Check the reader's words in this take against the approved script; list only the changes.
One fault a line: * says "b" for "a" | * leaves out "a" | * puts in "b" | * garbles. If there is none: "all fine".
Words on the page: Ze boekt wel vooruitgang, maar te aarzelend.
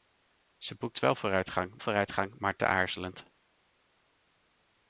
* puts in "vooruitgang"